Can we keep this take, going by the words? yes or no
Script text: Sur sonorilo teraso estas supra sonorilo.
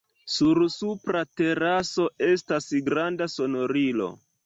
no